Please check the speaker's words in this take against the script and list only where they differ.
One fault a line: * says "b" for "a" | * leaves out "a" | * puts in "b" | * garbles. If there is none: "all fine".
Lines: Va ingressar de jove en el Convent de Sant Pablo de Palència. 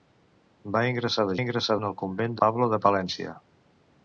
* says "ingressar" for "jove"
* leaves out "de Sant"